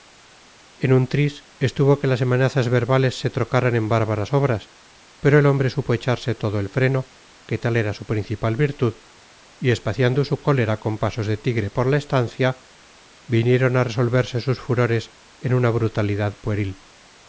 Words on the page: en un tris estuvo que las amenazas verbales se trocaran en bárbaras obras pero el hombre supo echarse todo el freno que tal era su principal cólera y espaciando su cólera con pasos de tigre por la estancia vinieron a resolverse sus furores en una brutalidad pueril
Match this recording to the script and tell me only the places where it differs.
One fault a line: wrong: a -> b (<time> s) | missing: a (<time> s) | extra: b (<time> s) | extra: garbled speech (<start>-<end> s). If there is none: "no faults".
wrong: cólera -> virtud (8.6 s)